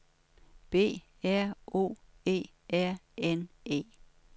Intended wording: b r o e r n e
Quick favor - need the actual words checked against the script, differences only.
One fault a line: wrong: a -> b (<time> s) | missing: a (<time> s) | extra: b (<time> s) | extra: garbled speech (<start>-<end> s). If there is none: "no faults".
no faults